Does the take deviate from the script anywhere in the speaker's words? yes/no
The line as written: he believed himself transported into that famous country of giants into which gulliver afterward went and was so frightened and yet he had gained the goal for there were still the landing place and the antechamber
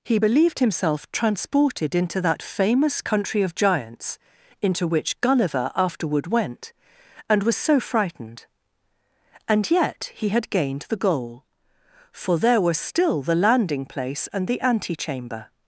no